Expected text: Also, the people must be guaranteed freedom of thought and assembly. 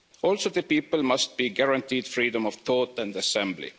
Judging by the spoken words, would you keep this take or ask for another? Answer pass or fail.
pass